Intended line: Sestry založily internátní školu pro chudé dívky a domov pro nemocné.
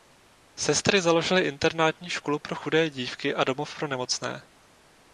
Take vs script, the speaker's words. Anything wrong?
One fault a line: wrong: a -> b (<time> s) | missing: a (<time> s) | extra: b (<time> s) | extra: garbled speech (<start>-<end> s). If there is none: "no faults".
no faults